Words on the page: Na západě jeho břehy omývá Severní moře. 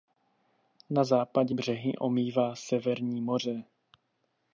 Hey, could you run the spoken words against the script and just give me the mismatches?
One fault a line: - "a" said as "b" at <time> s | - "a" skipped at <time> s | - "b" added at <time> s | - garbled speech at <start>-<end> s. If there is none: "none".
- "jeho" skipped at 1.6 s